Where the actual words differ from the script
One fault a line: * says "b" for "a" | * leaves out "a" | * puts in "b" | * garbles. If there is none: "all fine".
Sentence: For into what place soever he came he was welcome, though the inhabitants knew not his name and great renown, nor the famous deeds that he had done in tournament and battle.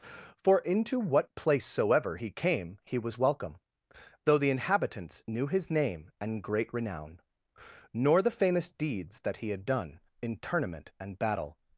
* leaves out "not"